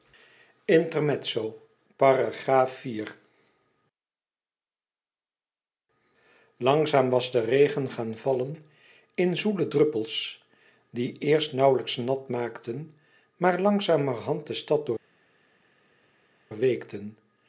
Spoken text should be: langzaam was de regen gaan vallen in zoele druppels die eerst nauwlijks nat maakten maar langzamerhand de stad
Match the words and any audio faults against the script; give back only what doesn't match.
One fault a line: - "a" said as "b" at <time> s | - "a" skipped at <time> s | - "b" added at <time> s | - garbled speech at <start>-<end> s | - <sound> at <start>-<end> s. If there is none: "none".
none